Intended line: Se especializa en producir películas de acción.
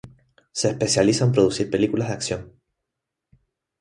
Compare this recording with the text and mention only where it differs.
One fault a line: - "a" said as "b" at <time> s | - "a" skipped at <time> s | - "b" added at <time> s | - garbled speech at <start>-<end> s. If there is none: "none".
none